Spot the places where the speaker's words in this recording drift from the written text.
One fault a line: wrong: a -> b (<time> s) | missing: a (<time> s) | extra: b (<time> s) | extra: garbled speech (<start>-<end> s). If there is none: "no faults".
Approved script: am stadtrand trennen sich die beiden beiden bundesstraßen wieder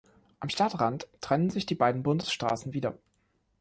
missing: beiden (2.0 s)